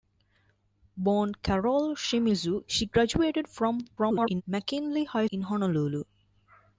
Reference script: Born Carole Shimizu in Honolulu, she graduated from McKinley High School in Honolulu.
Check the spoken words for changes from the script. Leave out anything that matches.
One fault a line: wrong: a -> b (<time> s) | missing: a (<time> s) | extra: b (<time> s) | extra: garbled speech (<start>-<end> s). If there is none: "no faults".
missing: in Honolulu (2.6 s)
extra: garbled speech (4.0-4.4 s)
missing: School (5.3 s)